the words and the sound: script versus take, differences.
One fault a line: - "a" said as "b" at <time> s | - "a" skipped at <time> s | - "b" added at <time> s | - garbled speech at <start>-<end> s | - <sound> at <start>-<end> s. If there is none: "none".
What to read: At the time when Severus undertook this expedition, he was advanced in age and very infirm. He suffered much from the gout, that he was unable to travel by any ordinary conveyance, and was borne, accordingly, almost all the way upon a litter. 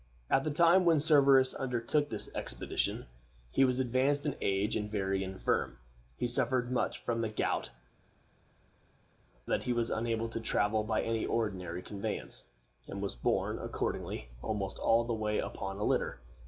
none